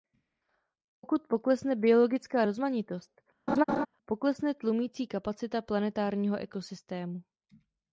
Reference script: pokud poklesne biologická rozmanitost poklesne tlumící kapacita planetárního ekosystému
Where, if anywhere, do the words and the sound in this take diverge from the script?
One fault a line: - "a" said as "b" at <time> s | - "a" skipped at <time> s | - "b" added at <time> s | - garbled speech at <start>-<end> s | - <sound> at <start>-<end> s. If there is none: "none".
- laugh at 3.5-3.9 s